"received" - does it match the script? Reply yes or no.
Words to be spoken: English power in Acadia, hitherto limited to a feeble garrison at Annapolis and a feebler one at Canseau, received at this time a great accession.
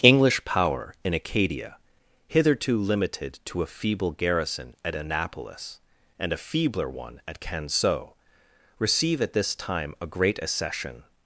no